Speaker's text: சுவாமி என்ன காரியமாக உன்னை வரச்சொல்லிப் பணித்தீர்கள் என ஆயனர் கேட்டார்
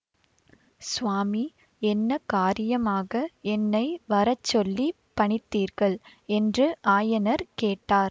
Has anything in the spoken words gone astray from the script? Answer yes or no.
yes